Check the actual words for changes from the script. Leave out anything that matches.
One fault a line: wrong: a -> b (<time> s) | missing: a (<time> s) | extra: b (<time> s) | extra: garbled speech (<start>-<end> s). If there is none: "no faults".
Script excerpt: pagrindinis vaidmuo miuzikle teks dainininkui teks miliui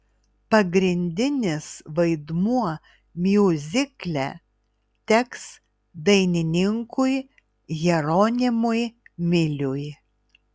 wrong: teks -> jeronimui (7.8 s)